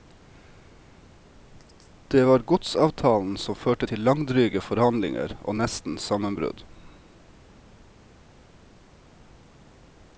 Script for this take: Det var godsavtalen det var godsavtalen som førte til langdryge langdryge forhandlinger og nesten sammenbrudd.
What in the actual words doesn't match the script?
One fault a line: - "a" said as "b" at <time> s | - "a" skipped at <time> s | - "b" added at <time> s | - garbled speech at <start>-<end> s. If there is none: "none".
- "det var godsavtalen" skipped at 3.4 s
- "langdryge" skipped at 4.6 s